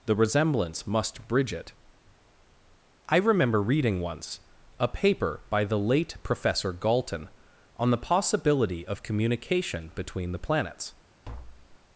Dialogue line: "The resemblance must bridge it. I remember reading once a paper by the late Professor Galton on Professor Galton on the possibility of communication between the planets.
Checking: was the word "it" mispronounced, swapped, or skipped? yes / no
no